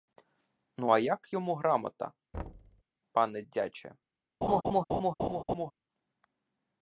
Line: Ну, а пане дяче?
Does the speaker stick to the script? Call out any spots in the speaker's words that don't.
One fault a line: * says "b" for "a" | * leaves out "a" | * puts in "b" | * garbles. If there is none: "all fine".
* puts in "як йому грамота"